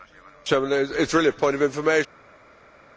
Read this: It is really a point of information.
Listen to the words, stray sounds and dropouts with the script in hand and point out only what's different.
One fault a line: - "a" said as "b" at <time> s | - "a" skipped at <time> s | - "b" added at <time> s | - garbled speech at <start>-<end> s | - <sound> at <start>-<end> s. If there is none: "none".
none